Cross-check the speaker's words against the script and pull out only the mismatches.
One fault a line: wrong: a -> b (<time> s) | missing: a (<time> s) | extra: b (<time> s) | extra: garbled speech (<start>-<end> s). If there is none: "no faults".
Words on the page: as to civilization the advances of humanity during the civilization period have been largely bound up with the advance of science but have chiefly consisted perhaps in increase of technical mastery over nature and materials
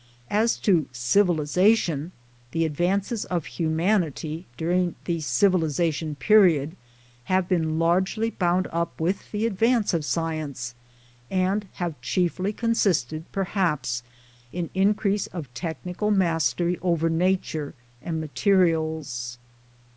wrong: but -> and (11.3 s)